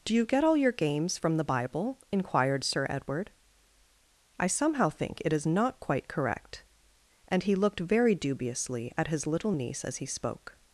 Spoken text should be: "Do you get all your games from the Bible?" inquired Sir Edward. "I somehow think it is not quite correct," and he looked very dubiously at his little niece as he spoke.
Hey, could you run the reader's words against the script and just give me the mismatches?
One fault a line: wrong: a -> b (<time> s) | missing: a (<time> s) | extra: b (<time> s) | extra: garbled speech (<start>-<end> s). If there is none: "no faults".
no faults